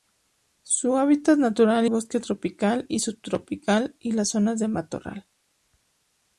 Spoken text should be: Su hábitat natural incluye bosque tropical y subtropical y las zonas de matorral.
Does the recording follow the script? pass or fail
fail